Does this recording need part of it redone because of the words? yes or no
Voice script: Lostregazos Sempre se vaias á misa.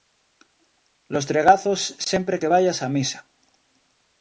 yes